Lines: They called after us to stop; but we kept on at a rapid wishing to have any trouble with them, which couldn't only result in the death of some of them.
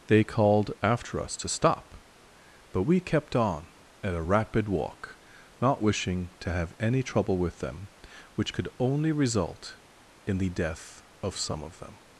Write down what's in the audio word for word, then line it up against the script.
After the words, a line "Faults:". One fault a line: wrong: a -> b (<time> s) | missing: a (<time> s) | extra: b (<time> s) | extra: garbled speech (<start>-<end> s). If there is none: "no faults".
They called after us to stop; but we kept on at a rapid walk, not wishing to have any trouble with them, which could only result in the death of some of them.
Faults:
extra: walk not (4.7 s)
wrong: couldn't -> could (8.5 s)